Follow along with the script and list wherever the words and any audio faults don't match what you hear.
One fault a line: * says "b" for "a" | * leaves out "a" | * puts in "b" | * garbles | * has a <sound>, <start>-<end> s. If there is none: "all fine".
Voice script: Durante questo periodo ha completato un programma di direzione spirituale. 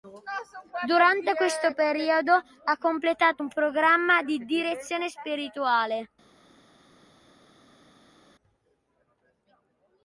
all fine